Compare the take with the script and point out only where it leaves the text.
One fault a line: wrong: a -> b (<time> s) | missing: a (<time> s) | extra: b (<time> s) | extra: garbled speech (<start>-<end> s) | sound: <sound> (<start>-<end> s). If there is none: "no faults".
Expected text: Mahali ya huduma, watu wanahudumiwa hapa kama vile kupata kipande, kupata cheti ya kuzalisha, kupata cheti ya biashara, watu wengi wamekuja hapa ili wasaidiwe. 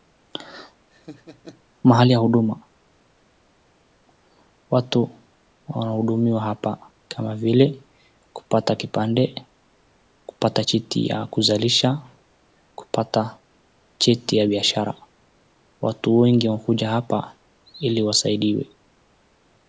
sound: laugh (0.9-1.6 s)